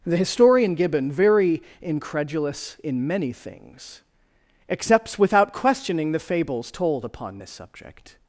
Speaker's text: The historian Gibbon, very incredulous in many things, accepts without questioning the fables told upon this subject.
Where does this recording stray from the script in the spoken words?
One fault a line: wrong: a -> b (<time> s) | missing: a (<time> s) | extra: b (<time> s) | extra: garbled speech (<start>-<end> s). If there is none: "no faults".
no faults